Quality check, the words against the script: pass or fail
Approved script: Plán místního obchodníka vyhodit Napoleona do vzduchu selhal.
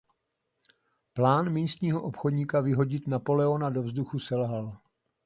pass